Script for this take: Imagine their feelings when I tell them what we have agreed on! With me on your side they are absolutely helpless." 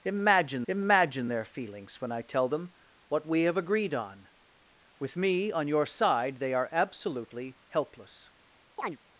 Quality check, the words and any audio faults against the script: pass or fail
fail